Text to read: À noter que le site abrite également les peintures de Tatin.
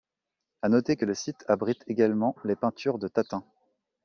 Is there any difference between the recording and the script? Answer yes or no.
no